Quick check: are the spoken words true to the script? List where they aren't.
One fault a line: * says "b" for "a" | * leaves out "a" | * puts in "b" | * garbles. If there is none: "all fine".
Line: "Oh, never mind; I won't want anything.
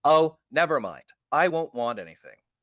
all fine